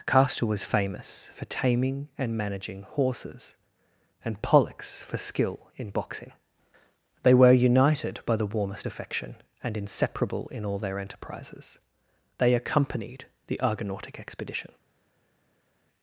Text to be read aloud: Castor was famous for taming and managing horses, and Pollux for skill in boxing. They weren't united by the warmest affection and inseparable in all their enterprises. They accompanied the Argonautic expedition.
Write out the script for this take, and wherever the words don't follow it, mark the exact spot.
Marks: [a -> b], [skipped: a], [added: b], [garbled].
Castor was famous for taming and managing horses, and Pollux for skill in boxing. They [weren't -> were] united by the warmest affection and inseparable in all their enterprises. They accompanied the Argonautic expedition.